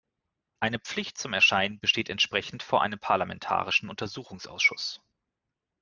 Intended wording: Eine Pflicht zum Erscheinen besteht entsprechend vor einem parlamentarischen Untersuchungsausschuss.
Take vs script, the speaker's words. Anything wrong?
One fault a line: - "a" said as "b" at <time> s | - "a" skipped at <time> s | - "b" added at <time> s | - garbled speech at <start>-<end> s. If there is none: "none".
none